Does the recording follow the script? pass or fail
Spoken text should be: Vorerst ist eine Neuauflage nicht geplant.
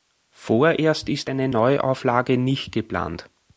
pass